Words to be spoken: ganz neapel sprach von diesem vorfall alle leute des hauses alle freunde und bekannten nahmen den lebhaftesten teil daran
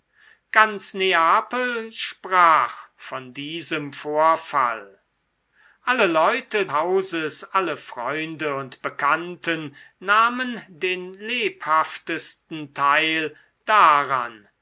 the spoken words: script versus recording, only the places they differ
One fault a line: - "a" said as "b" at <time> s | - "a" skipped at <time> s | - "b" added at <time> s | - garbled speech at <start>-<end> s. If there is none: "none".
- "des" skipped at 6.7 s